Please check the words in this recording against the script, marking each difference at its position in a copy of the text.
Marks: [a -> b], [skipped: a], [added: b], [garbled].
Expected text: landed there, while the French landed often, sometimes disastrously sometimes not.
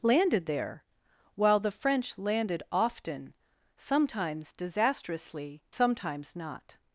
landed there, while the French landed often, sometimes disastrously sometimes not.